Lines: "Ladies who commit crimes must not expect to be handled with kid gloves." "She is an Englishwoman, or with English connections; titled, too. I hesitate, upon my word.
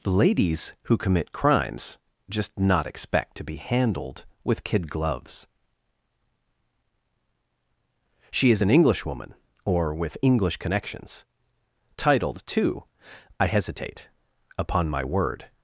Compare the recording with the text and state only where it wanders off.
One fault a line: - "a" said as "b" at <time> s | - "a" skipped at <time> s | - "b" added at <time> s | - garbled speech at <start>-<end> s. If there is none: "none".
- "must" said as "just" at 2.3 s